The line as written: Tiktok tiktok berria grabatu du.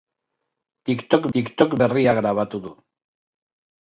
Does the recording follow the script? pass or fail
pass